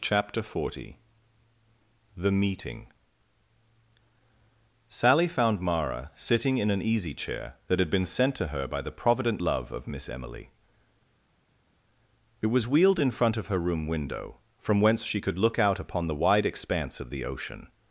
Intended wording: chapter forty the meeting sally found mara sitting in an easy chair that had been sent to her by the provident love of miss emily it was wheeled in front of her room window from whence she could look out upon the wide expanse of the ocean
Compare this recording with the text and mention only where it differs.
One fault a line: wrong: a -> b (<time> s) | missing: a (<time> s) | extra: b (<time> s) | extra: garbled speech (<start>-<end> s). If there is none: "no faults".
no faults